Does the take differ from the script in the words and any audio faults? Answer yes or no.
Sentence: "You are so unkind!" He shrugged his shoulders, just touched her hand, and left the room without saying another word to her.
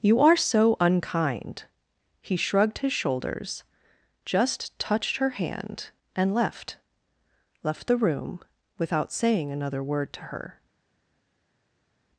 yes